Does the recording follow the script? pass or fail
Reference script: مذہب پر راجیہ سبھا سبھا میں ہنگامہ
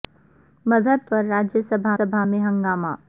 pass